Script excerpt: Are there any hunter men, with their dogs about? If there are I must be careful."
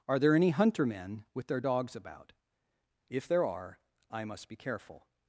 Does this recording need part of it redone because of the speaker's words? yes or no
no